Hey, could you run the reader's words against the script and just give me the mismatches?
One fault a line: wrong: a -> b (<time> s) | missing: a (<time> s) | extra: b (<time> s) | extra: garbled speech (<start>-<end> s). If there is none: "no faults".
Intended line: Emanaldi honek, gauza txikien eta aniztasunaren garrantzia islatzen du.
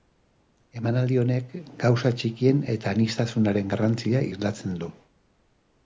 no faults